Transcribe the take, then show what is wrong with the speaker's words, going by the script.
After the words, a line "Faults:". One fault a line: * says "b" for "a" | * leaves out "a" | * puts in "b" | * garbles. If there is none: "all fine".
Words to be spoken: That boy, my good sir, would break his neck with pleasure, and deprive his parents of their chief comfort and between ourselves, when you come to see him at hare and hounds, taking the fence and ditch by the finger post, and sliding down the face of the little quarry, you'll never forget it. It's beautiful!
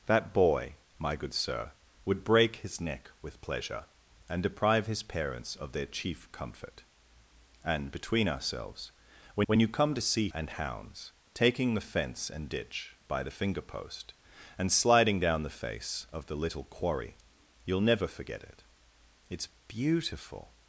That boy, my good sir, would break his neck with pleasure, and deprive his parents of their chief comfort and between ourselves, when when you come to see and hounds, taking the fence and ditch by the finger post, and sliding down the face of the little quarry, you'll never forget it. It's beautiful!
Faults:
* puts in "when"
* leaves out "him at hare"